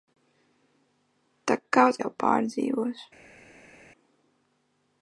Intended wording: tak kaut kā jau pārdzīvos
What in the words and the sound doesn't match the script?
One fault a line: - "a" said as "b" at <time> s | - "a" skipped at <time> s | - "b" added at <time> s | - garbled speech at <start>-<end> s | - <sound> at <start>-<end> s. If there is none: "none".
- "kā" skipped at 2.0 s